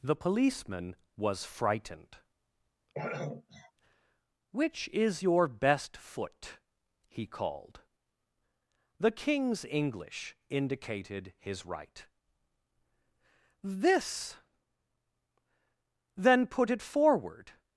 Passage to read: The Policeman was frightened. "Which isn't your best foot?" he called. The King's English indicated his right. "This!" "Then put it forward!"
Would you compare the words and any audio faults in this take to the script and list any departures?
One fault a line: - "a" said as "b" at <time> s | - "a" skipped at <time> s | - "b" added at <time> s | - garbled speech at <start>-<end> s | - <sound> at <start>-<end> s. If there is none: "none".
- throat clearing at 2.9-3.7 s
- "isn't" said as "is" at 4.9 s